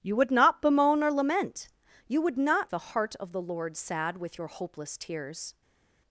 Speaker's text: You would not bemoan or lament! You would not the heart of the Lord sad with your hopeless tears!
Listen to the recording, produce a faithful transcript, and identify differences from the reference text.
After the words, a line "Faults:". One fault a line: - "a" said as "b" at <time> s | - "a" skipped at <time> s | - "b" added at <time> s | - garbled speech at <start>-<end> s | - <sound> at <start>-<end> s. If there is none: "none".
You would not bemoan or lament! You would not the heart of the Lord sad with your hopeless tears!
Faults:
none